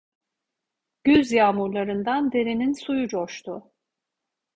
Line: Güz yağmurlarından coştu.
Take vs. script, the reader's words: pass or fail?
fail